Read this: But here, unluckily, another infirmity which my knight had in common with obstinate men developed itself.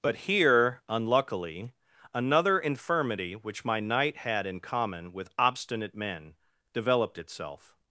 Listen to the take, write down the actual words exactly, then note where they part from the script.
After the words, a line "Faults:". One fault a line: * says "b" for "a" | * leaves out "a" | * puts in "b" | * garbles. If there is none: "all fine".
But here, unluckily, another infirmity which my knight had in common with obstinate men developed itself.
Faults:
all fine